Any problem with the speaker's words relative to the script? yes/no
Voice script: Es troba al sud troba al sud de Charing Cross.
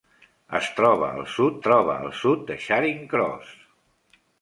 no